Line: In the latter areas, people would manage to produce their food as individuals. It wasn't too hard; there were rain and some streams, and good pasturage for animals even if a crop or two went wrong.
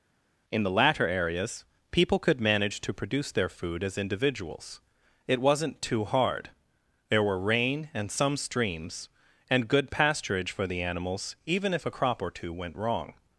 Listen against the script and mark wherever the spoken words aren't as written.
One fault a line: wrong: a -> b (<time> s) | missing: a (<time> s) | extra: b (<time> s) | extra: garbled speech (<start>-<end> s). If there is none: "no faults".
wrong: would -> could (2.2 s)
extra: the (10.7 s)